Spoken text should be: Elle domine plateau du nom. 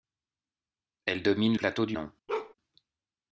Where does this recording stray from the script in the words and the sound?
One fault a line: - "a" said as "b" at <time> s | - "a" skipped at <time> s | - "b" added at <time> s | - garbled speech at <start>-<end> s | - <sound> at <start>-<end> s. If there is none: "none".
- bark at 2.3-2.5 s